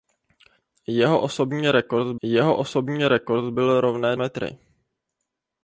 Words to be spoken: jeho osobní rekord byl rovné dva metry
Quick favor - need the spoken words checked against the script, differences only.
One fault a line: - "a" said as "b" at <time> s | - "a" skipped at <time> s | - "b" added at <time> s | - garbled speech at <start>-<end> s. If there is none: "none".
- "jeho osobní rekord" added at 2.2 s
- "dva" skipped at 4.2 s